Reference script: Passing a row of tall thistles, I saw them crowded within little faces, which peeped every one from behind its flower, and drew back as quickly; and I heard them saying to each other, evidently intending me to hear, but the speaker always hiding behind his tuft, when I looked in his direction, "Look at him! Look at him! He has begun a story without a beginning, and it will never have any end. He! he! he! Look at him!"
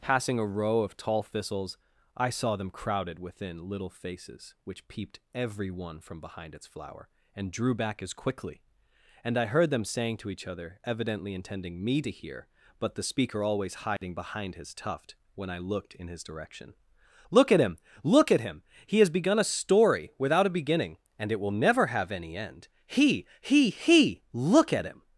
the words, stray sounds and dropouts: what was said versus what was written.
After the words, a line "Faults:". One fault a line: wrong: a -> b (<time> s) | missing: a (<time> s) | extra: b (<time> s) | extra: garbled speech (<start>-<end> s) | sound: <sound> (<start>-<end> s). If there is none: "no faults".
Passing a row of tall thistles, I saw them crowded within little faces, which peeped every one from behind its flower, and drew back as quickly; and I heard them saying to each other, evidently intending me to hear, but the speaker always hiding behind his tuft, when I looked in his direction, "Look at him! Look at him! He has begun a story without a beginning, and it will never have any end. He! he! he! Look at him!"
Faults:
sound: dropout (14.0-14.0 s)